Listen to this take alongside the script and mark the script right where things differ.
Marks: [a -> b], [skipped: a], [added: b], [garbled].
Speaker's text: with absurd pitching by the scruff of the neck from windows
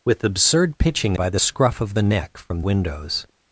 with absurd pitching by the scruff of the neck from windows